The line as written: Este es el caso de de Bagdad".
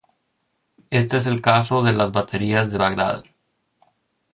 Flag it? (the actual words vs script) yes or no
yes